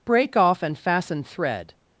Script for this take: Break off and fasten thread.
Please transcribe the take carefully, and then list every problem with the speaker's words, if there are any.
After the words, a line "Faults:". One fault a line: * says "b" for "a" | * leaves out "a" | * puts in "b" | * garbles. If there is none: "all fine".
Break off and fasten thread.
Faults:
all fine